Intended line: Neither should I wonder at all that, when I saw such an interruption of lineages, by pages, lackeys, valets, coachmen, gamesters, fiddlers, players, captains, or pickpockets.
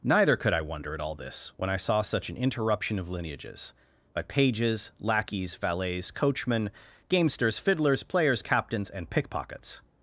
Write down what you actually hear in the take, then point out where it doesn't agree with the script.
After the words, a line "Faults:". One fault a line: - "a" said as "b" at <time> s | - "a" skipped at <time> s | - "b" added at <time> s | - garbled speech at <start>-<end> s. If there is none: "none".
Neither could I wonder at all this, when I saw such an interruption of lineages, by pages, lackeys, valets, coachmen, gamesters, fiddlers, players, captains, and pickpockets.
Faults:
- "should" said as "could" at 0.3 s
- "that" said as "this" at 1.1 s
- "or" said as "and" at 8.9 s